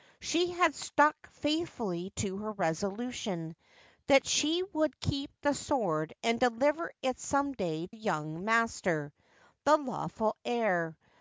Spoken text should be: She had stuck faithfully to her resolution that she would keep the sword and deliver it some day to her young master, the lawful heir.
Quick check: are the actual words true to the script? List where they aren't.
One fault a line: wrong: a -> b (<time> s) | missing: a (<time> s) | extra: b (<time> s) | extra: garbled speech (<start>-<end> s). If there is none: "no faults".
missing: to her (7.9 s)